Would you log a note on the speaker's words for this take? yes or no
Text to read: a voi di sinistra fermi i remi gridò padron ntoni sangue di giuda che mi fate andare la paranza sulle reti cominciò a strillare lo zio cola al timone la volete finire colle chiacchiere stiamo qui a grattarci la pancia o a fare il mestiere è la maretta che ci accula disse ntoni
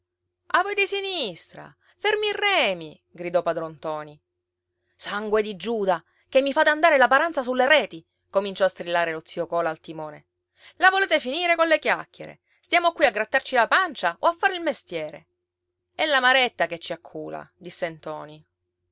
no